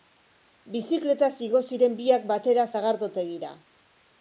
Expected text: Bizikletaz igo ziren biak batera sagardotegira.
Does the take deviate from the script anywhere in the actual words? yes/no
no